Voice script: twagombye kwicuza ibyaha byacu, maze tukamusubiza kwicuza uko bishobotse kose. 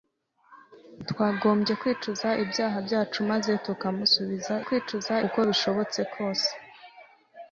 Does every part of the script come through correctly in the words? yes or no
yes